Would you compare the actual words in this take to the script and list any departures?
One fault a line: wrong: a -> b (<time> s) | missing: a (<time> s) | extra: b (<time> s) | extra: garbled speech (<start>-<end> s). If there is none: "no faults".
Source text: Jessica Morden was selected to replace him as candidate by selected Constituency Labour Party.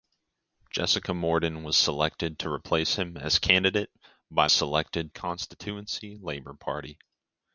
no faults